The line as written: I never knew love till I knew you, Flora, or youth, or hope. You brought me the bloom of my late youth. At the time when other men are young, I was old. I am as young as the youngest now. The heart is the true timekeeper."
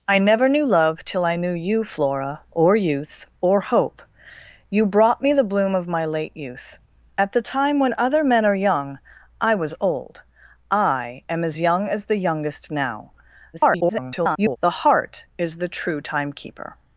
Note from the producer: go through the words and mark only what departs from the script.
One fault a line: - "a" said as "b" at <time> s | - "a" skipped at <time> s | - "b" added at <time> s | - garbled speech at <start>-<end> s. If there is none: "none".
- garbled speech at 13.5-14.6 s